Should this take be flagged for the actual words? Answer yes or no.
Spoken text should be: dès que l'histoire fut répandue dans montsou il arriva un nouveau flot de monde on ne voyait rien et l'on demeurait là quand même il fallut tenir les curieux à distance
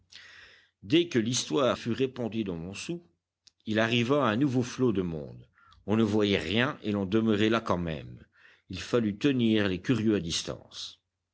no